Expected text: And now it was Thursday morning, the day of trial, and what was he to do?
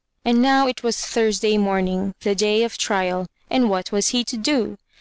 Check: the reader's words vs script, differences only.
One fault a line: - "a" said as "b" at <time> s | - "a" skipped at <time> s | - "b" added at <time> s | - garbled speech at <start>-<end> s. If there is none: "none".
none